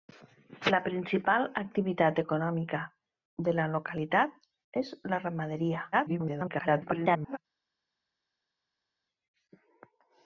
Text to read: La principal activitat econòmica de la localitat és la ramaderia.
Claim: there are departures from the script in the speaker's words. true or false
true